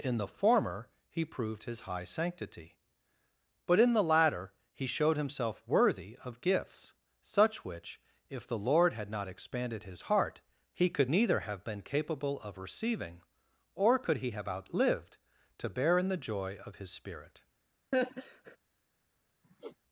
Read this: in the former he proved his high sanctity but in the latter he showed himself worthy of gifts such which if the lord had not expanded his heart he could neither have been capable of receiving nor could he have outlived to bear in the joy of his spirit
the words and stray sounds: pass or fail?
fail